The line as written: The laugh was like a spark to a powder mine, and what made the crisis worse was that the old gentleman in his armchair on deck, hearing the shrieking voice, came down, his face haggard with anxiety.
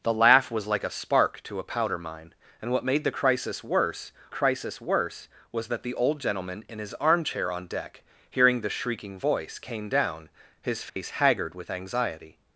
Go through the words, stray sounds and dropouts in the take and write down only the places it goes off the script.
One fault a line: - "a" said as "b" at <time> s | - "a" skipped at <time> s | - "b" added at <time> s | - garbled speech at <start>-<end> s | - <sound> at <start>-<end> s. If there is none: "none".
- "crisis worse" added at 4.3 s
- dropout at 10.9-11.0 s